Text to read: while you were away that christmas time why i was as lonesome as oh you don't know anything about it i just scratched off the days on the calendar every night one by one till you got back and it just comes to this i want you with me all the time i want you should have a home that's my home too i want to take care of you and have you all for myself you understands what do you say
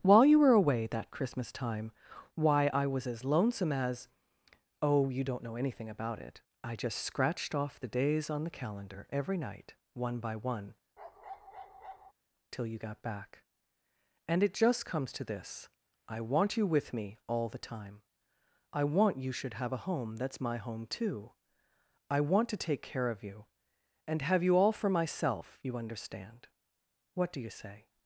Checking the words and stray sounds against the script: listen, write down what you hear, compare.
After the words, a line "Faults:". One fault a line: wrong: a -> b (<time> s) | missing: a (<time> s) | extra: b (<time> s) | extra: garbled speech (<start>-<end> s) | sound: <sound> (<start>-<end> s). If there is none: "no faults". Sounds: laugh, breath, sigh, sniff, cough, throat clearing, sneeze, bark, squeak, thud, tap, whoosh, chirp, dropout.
while you were away that christmas time why i was as lonesome as oh you don't know anything about it i just scratched off the days on the calendar every night one by one till you got back and it just comes to this i want you with me all the time i want you should have a home that's my home too i want to take care of you and have you all for myself you understand what do you say
Faults:
sound: bark (11.0-12.1 s)
wrong: understands -> understand (25.8 s)